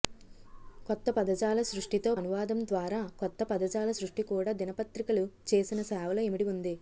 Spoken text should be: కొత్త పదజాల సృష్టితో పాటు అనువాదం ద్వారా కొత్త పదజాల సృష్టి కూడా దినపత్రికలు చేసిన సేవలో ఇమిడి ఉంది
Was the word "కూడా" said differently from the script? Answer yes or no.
no